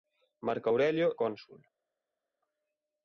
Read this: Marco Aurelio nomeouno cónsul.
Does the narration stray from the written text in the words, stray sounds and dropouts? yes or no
yes